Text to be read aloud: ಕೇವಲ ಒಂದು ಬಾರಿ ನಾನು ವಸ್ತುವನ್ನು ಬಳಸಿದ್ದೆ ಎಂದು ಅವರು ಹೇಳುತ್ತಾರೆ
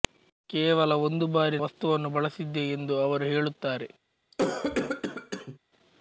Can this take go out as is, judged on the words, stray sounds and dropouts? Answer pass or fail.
fail